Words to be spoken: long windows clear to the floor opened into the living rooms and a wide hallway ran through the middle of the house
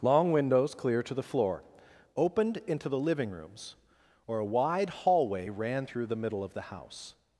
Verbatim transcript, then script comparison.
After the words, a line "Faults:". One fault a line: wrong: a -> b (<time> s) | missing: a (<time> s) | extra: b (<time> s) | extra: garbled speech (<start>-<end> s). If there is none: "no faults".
long windows clear to the floor opened into the living rooms or a wide hallway ran through the middle of the house
Faults:
wrong: and -> or (4.3 s)